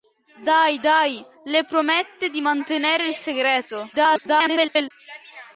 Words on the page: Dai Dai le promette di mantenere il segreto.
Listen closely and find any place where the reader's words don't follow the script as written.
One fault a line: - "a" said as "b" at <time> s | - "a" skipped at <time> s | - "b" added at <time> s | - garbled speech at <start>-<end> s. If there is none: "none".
- garbled speech at 3.9-4.9 s